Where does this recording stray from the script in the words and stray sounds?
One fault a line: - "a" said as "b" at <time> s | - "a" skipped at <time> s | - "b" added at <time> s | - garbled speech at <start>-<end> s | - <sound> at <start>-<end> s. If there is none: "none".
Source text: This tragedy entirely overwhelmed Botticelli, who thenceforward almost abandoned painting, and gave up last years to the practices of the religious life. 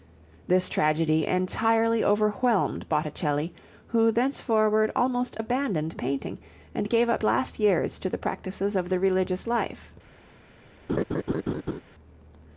- laugh at 10.9-11.8 s